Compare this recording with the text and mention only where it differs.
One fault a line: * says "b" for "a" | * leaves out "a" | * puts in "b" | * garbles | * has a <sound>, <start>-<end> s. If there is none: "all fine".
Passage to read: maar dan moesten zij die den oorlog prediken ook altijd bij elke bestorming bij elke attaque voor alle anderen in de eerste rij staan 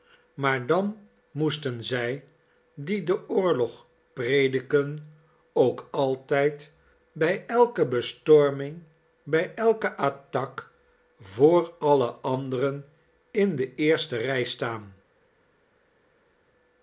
all fine